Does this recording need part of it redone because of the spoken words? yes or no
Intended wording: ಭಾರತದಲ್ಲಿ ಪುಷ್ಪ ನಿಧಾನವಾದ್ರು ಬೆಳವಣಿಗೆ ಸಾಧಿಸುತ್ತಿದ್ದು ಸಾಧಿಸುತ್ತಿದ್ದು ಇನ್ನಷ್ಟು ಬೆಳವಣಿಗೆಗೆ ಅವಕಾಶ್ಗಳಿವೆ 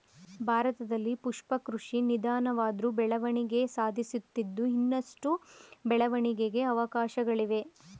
yes